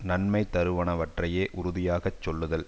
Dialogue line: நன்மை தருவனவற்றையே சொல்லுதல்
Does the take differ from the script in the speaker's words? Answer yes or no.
yes